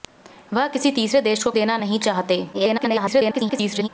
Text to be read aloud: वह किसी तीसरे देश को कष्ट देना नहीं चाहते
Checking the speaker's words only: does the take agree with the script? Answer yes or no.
no